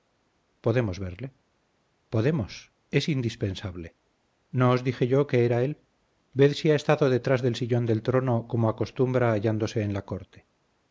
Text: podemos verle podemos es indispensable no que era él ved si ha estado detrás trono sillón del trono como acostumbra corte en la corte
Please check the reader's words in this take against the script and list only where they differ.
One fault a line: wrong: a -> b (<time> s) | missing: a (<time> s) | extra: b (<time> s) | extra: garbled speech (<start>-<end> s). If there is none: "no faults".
extra: os dije yo (4.7 s)
wrong: trono -> del (7.4 s)
wrong: corte -> hallándose (9.3 s)